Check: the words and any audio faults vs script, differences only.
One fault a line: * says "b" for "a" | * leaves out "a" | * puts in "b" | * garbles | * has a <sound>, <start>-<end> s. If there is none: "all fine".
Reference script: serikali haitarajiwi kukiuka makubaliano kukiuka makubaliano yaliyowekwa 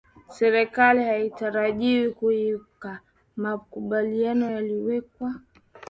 * leaves out "kukiuka makubaliano"